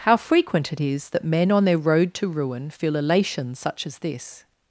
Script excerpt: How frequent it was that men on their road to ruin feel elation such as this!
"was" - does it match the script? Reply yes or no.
no